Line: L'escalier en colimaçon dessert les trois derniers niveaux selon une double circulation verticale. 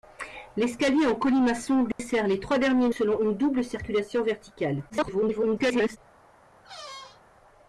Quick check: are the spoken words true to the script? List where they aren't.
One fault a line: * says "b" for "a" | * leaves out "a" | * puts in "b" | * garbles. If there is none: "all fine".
* leaves out "niveaux"
* garbles